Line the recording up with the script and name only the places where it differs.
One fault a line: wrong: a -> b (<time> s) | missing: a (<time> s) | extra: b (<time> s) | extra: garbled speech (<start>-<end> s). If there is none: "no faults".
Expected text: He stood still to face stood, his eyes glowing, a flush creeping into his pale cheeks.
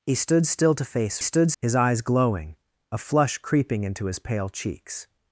no faults